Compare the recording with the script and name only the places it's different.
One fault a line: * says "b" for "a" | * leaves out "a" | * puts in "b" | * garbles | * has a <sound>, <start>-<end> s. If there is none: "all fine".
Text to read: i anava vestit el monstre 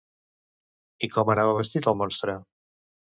* puts in "com"